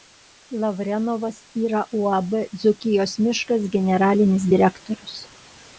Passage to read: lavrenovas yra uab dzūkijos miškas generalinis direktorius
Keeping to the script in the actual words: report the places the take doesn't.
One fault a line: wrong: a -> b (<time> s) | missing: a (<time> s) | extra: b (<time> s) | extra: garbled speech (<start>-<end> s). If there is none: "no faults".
no faults